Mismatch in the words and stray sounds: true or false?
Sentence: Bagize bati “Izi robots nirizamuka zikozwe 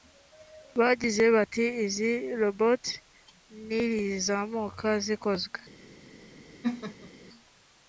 true